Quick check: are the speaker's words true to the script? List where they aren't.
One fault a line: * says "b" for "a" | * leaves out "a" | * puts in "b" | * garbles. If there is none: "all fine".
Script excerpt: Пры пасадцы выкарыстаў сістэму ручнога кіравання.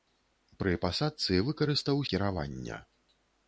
* leaves out "сістэму ручнога"